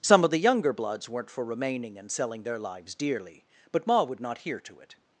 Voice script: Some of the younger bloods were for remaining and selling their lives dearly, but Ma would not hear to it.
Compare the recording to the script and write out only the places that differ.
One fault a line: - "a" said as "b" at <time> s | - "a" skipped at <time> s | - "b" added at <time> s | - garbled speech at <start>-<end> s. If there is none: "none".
- "were" said as "weren't" at 1.1 s